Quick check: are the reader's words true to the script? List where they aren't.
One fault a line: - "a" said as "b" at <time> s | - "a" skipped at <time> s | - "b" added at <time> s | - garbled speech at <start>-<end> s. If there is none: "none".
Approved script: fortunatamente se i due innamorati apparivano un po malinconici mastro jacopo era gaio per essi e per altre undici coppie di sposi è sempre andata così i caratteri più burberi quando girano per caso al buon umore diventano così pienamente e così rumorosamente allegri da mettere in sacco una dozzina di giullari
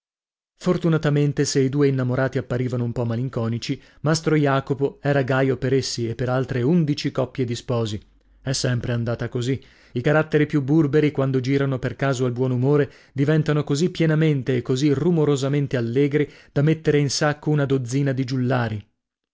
none